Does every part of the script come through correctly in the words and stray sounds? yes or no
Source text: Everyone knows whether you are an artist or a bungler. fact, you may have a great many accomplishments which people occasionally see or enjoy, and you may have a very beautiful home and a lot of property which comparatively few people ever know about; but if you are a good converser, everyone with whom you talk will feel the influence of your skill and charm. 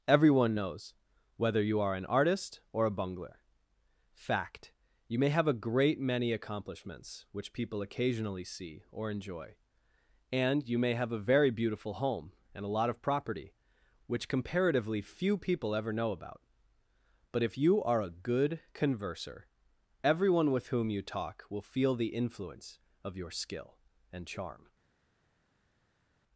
yes